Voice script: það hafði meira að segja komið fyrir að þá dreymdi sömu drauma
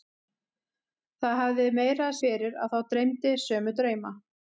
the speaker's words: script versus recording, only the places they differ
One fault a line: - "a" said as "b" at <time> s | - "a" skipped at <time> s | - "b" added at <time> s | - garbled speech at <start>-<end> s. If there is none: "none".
- "segja komið" skipped at 2.2 s